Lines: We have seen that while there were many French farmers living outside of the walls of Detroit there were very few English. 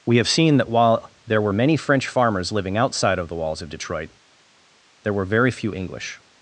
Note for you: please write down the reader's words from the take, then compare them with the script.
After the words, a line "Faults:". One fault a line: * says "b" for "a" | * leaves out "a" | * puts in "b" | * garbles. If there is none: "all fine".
We have seen that while there were many French farmers living outside of the walls of Detroit there were very few English.
Faults:
all fine